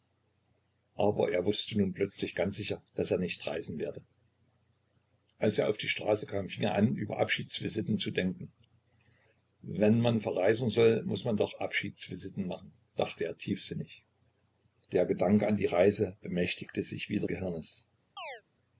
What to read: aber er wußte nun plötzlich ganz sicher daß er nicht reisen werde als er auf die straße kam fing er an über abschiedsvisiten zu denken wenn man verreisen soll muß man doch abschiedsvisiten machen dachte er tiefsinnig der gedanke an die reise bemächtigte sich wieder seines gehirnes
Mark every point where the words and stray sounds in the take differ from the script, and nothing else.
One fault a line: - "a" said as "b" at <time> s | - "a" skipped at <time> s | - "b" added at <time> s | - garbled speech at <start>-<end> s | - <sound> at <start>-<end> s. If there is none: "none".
- "seines" skipped at 17.3 s
- chirp at 18.2-18.4 s